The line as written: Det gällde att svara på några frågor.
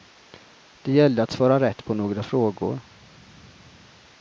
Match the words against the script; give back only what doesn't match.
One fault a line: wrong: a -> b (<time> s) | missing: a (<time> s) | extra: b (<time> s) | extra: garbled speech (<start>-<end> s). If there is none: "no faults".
extra: rätt (1.6 s)